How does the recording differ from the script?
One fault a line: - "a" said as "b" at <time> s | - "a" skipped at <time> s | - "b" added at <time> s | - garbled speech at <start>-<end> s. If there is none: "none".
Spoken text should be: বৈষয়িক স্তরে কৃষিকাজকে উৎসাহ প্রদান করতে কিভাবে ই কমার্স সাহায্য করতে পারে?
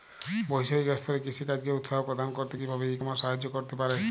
none